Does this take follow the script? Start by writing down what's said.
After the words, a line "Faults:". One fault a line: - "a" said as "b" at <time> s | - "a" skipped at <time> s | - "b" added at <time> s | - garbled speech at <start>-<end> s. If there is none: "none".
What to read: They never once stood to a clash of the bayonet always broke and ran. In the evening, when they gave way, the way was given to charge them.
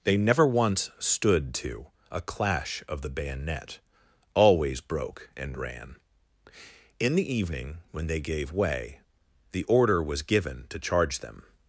They never once stood to a clash of the bayonet always broke and ran. In the evening, when they gave way, the order was given to charge them.
Faults:
- "way" said as "order" at 9.6 s